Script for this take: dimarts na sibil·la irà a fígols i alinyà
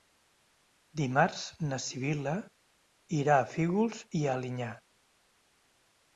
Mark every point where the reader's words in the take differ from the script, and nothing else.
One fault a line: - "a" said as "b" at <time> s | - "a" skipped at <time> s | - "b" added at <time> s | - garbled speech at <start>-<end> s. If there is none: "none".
none